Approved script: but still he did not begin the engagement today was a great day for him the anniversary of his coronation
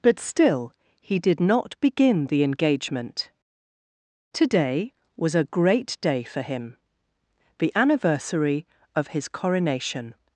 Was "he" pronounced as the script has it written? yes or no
yes